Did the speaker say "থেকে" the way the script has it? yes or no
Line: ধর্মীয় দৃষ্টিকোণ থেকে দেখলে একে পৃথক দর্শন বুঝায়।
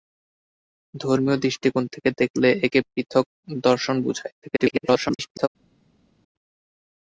yes